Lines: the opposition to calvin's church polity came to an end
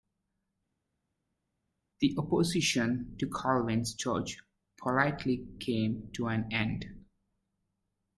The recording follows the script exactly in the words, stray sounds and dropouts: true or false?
true